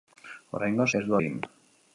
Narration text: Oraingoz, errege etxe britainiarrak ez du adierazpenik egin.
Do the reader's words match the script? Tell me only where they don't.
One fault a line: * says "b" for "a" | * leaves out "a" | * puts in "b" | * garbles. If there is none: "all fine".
* leaves out "errege etxe britainiarrak"
* leaves out "adierazpenik"